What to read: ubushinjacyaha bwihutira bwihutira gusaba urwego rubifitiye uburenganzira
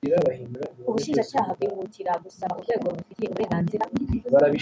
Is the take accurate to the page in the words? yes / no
no